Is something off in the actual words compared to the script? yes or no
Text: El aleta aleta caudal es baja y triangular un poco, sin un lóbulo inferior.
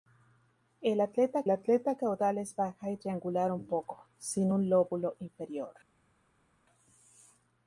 no